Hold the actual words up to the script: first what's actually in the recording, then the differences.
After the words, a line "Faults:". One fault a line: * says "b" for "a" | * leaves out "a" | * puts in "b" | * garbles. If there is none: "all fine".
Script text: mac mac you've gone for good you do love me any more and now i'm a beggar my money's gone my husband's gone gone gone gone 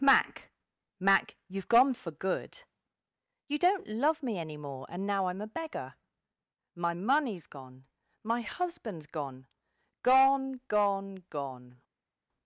mac mac you've gone for good you don't love me any more and now i'm a beggar my money's gone my husband's gone gone gone gone
Faults:
* says "don't" for "do"